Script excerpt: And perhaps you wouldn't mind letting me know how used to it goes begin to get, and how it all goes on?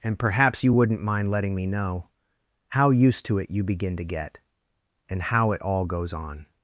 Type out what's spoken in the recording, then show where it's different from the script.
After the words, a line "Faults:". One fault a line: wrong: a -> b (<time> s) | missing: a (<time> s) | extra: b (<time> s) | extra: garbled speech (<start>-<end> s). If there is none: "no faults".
And perhaps you wouldn't mind letting me know how used to it you begin to get, and how it all goes on?
Faults:
wrong: goes -> you (3.5 s)